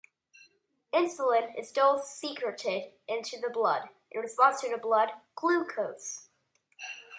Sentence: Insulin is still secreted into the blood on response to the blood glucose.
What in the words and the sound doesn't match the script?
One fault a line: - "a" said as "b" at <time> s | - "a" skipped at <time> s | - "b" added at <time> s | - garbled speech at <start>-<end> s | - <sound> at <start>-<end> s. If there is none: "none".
- "on" said as "in" at 4.1 s